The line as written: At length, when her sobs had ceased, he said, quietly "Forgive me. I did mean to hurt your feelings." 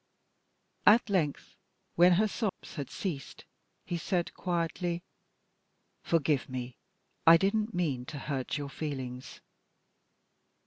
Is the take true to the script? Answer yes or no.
no